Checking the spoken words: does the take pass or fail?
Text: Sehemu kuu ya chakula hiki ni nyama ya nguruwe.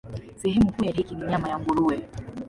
fail